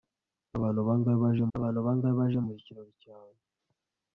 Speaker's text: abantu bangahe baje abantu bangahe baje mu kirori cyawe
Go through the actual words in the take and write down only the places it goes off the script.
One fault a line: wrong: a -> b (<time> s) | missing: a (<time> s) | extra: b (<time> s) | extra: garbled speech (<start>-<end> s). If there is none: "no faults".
no faults